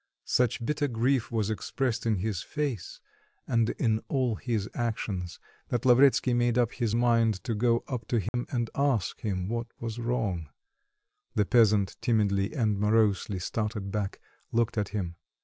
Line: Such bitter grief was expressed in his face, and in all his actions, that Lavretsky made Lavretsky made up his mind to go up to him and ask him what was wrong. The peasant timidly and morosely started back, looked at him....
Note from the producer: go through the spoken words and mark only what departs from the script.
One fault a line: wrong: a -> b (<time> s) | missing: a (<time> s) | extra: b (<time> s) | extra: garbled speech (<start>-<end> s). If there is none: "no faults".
missing: Lavretsky made (6.6 s)